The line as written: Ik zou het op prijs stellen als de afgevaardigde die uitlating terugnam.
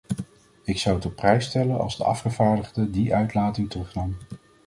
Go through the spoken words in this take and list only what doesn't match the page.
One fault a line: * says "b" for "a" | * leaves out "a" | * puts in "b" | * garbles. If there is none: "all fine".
all fine